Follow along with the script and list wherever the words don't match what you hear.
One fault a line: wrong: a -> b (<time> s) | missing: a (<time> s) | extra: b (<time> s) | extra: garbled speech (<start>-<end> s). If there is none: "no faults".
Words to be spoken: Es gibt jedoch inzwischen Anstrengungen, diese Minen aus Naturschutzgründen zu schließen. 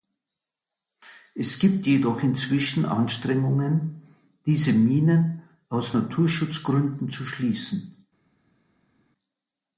no faults